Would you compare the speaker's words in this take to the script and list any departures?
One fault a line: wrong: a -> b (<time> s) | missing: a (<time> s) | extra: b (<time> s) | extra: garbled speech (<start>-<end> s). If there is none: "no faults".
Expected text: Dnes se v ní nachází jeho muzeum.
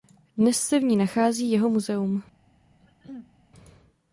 no faults